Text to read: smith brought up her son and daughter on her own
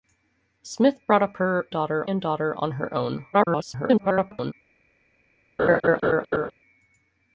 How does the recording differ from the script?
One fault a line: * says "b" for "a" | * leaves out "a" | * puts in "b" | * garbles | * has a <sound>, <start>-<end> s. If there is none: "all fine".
* says "daughter" for "son"
* garbles
* has a laugh, 5.6-6.5 s